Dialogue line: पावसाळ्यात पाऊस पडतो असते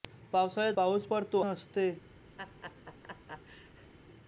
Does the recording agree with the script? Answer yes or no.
yes